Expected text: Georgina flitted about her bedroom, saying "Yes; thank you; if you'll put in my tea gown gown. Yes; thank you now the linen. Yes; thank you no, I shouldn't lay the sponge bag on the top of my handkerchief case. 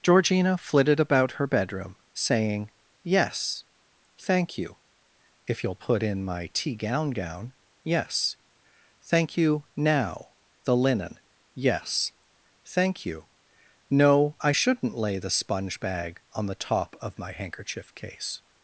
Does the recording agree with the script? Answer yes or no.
yes